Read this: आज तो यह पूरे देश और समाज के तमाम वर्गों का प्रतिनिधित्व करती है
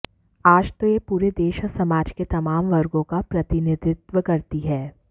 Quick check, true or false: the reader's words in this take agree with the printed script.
true